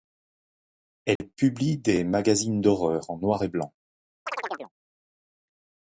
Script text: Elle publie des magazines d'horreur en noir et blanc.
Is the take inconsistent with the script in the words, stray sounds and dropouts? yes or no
yes